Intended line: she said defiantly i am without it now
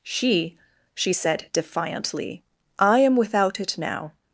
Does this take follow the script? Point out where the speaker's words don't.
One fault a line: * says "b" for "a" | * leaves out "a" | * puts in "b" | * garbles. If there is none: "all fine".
* puts in "she"